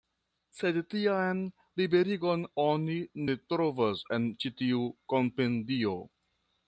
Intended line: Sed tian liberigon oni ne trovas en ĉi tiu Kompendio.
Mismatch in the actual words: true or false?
false